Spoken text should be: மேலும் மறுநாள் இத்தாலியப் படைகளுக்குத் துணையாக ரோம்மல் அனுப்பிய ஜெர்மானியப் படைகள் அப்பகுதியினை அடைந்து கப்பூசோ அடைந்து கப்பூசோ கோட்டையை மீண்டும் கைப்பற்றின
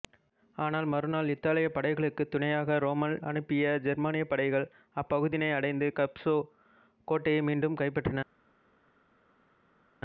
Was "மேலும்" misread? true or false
true